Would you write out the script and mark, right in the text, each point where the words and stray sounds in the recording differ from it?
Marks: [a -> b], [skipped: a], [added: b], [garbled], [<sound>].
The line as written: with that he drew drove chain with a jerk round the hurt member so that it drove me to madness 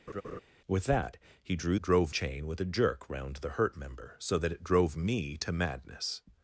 [laugh] with that he drew drove chain with a jerk round the hurt member so that it drove me to madness